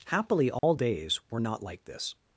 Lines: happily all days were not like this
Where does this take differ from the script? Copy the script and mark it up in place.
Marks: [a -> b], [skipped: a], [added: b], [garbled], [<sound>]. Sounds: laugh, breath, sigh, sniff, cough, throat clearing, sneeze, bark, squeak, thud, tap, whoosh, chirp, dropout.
happily all [dropout] days were not like this